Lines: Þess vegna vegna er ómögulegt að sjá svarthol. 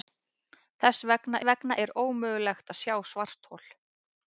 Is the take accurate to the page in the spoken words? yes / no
yes